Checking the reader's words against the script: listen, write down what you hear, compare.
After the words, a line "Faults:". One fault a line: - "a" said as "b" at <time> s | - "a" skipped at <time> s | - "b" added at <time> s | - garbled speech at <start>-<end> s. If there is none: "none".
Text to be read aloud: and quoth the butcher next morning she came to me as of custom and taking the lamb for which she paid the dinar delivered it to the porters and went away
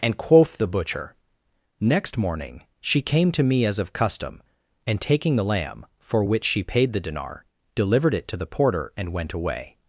and quoth the butcher next morning she came to me as of custom and taking the lamb for which she paid the dinar delivered it to the porter and went away
Faults:
- "porters" said as "porter" at 8.5 s